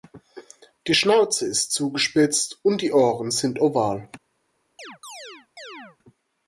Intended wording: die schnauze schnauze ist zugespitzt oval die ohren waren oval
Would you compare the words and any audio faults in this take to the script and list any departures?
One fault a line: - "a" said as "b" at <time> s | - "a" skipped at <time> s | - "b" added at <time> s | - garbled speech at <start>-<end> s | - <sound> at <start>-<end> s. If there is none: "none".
- "schnauze" skipped at 1.4 s
- "oval" said as "und" at 2.6 s
- "waren" said as "sind" at 3.3 s
- chirp at 4.8-6.0 s